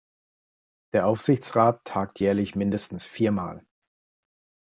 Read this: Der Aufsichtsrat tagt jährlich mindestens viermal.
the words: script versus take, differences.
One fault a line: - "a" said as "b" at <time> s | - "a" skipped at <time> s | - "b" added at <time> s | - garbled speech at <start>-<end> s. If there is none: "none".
none